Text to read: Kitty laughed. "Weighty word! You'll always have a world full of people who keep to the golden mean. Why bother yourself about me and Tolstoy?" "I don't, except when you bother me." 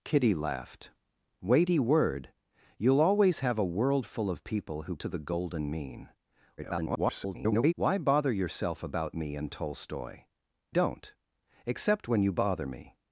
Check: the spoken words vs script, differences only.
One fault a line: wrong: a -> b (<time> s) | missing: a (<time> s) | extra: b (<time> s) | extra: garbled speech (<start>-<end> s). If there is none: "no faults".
missing: keep (5.0 s)
extra: garbled speech (6.6-7.7 s)
missing: I (10.3 s)